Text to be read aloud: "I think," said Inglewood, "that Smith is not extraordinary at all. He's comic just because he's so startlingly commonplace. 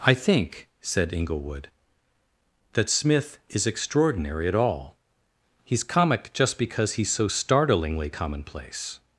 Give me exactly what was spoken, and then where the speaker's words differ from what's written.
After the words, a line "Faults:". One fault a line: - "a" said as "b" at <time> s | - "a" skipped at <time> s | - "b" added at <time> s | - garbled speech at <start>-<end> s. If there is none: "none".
"I think," said Inglewood, "that Smith is extraordinary at all. He's comic just because he's so startlingly commonplace.
Faults:
- "not" skipped at 3.7 s